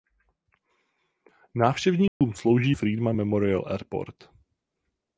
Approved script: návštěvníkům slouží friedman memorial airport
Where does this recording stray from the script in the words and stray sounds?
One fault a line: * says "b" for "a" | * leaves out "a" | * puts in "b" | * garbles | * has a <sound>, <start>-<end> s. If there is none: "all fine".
* has a dropout, 2.1-2.2 s